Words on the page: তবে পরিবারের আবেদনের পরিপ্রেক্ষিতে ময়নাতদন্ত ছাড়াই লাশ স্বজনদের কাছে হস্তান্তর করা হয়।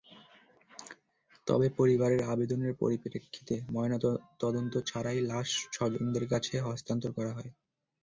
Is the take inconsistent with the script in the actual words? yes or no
no